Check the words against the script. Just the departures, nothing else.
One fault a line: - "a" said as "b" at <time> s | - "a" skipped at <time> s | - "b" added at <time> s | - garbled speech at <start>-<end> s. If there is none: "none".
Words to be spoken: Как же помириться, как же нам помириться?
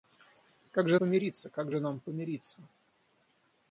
none